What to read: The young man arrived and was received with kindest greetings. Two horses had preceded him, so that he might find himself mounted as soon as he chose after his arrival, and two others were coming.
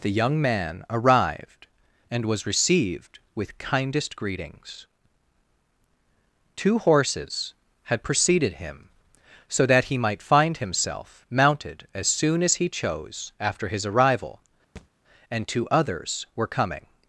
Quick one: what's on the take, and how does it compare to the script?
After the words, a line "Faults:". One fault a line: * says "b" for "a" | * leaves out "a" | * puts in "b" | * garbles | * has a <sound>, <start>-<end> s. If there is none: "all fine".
The young man arrived and was received with kindest greetings. Two horses had preceded him, so that he might find himself mounted as soon as he chose after his arrival, and two others were coming.
Faults:
* has a thud, 14.8-14.9 s